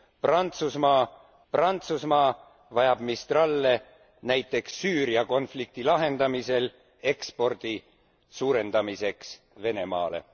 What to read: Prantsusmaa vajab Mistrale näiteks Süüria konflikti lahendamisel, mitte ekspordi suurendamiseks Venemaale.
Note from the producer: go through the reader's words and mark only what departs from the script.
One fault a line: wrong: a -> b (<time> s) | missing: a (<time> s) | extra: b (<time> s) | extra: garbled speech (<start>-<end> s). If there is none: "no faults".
extra: prantsusmaa (1.5 s)
missing: mitte (6.7 s)